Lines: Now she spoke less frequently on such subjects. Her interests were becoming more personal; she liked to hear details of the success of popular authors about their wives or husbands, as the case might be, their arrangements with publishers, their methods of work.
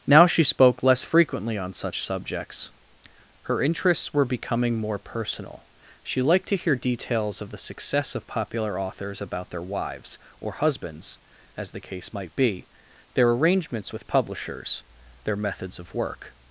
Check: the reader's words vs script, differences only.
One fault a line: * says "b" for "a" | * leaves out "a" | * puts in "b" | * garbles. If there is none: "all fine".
all fine